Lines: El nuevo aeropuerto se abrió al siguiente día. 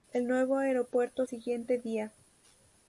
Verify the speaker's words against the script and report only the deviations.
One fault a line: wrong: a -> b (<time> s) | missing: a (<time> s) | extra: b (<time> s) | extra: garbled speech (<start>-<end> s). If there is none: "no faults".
missing: se abrió al (1.3 s)